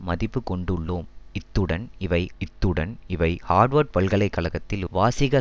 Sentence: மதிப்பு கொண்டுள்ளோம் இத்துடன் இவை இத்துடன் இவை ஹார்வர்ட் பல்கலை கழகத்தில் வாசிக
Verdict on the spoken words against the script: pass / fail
pass